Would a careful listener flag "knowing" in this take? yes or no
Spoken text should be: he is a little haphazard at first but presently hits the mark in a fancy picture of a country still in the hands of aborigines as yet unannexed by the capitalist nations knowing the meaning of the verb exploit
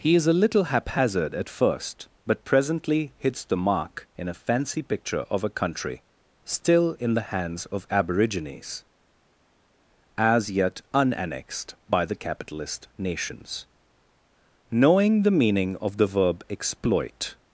no